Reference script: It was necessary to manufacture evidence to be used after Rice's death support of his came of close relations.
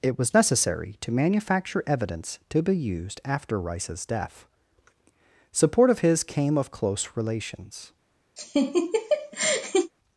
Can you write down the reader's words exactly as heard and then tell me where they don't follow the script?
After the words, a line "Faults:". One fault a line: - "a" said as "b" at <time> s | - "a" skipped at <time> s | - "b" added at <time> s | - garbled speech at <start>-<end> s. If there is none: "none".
It was necessary to manufacture evidence to be used after Rice's death support of his came of close relations.
Faults:
none